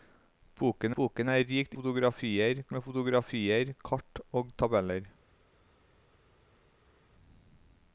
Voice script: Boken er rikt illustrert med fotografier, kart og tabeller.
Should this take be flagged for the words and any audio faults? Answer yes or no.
yes